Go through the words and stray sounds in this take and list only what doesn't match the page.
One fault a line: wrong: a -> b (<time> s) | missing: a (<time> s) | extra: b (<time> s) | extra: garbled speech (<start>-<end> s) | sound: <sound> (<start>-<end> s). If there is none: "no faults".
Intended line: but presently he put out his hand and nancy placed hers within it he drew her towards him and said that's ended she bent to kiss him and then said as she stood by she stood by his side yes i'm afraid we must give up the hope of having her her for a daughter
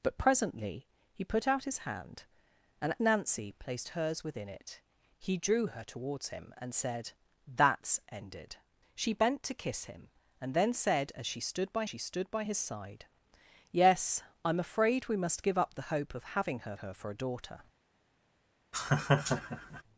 sound: laugh (18.7-19.8 s)